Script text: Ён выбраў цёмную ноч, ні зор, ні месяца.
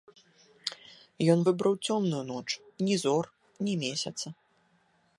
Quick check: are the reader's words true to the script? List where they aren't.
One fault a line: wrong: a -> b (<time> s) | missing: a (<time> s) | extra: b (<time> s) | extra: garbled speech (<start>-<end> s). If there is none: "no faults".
no faults